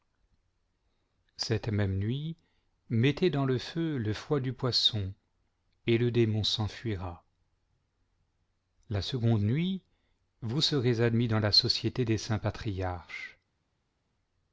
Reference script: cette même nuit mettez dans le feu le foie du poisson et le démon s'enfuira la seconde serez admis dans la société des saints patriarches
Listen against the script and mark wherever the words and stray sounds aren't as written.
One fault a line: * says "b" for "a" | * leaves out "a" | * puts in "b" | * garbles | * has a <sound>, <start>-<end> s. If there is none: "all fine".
* puts in "nuit vous"